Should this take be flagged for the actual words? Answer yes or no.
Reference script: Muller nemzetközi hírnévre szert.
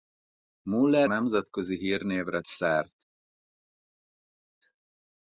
no